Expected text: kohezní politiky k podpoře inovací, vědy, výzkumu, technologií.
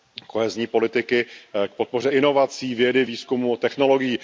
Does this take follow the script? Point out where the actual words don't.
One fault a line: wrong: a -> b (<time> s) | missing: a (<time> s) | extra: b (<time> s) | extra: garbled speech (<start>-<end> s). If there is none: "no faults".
no faults